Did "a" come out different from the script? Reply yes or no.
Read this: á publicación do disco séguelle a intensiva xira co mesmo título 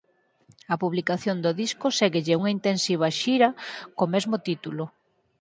yes